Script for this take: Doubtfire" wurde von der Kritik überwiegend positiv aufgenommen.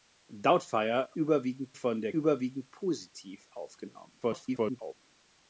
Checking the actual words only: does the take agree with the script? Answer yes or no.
no